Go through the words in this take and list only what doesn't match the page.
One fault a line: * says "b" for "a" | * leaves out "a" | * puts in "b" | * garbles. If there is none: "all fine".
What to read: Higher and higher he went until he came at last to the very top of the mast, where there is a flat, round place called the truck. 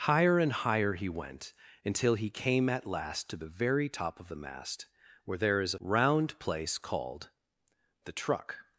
* leaves out "flat"